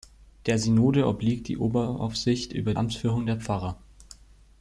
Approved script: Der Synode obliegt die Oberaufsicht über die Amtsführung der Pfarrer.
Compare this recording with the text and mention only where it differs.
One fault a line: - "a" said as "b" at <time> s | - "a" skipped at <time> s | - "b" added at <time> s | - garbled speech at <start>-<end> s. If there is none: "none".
- "die" skipped at 2.7 s